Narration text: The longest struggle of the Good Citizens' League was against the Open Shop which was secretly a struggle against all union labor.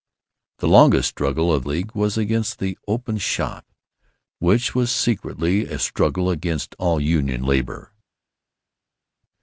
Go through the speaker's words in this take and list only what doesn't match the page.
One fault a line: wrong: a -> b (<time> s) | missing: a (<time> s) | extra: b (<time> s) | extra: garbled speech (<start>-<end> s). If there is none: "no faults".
missing: the Good Citizens (1.7 s)